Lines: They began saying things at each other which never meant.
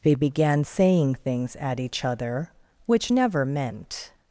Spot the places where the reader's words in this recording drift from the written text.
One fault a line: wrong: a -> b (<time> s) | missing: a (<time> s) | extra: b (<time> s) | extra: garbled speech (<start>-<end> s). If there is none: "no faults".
no faults